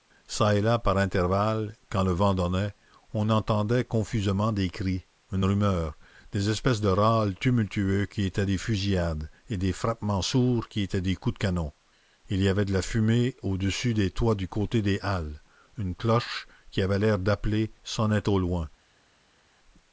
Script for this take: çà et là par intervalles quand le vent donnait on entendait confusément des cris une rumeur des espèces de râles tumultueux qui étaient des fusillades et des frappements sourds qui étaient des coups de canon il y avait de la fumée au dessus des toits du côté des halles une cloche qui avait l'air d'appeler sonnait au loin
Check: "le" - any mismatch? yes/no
no